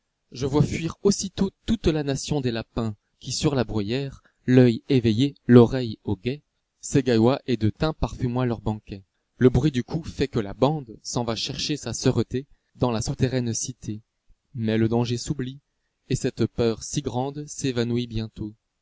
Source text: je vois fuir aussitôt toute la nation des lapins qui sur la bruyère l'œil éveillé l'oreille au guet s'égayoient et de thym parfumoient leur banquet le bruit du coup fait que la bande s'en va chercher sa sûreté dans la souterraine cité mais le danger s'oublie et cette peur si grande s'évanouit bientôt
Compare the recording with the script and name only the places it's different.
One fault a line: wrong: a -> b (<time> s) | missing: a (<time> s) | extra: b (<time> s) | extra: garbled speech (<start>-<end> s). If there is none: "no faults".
no faults